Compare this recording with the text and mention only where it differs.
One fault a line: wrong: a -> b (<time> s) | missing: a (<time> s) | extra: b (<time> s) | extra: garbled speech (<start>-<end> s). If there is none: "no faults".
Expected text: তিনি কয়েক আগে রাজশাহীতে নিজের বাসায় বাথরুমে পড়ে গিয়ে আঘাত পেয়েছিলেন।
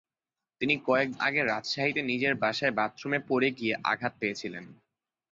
no faults